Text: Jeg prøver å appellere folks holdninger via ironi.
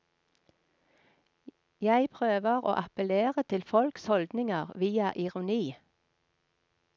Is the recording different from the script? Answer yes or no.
yes